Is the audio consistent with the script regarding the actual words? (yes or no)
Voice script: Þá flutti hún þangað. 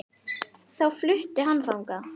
no